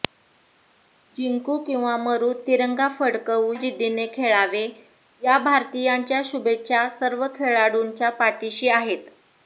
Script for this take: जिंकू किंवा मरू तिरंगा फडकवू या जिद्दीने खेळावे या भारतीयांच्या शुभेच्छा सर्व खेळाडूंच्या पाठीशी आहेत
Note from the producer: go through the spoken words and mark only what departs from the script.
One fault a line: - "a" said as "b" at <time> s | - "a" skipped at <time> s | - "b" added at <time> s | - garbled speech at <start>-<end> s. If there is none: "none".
- "या" skipped at 3.5 s